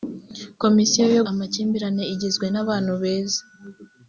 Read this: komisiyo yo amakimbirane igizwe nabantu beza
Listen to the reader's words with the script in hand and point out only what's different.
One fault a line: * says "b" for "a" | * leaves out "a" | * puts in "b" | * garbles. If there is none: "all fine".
all fine